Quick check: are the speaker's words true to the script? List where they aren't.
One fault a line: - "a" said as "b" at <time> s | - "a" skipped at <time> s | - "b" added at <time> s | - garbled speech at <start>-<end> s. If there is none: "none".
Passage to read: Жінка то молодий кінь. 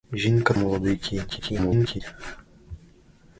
- "то" skipped at 0.5 s
- garbled speech at 1.3-2.0 s